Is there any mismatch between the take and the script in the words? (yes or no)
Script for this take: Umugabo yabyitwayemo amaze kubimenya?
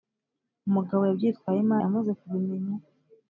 no